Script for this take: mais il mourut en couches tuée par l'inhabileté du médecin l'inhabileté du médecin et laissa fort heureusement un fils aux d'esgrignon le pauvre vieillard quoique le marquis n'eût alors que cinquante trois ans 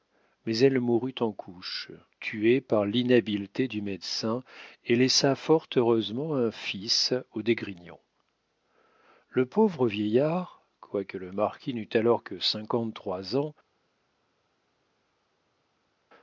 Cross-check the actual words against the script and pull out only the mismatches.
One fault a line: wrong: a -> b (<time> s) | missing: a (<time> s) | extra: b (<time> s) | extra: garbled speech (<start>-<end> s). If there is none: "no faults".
wrong: il -> elle (0.6 s)
missing: l'inhabileté du médecin (4.4 s)